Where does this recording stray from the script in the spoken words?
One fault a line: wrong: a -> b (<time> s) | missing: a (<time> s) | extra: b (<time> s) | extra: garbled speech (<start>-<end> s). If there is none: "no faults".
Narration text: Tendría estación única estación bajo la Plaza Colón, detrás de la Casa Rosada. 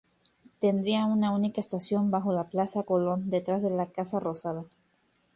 wrong: estación -> una (1.1 s)